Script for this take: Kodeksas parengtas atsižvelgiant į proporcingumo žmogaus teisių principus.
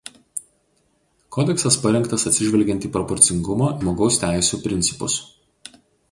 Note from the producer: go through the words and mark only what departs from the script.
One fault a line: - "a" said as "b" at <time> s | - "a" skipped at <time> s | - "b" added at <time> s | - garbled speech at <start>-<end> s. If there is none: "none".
none